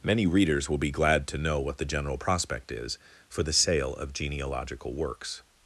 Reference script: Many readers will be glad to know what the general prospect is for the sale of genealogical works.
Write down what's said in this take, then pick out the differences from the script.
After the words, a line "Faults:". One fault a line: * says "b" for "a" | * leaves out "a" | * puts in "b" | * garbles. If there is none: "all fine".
Many readers will be glad to know what the general prospect is for the sale of genealogical works.
Faults:
all fine